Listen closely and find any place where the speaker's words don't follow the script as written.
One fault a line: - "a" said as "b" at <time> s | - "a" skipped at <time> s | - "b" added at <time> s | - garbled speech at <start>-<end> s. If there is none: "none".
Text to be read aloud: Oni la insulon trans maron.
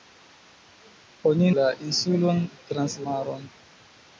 none